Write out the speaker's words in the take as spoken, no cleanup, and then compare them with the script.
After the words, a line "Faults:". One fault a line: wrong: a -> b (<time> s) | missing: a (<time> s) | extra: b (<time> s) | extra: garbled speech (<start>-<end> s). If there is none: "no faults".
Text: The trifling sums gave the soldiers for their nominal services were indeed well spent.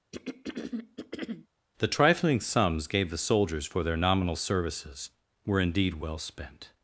The trifling sums gave the soldiers for their nominal services were indeed well spent.
Faults:
no faults